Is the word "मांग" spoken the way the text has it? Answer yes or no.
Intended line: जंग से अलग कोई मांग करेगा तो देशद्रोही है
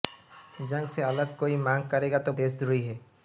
yes